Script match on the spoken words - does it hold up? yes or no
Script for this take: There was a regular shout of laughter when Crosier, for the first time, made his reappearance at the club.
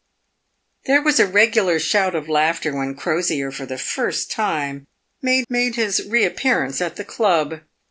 no